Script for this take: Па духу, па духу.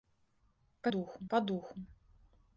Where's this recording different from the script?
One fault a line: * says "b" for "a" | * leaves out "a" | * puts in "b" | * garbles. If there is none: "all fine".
all fine